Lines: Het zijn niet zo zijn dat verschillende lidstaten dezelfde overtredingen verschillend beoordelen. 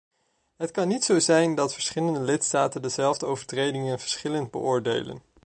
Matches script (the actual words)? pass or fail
fail